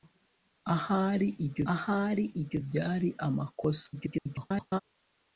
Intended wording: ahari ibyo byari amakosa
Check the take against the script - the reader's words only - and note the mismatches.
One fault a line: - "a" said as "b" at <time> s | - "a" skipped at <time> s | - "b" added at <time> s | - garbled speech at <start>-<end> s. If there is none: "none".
- "ahari ibyo" added at 1.7 s
- garbled speech at 3.9-4.8 s